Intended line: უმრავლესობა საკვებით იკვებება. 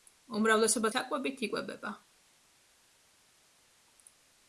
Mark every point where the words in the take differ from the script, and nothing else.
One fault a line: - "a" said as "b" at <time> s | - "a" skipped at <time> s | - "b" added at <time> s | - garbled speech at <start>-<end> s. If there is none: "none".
none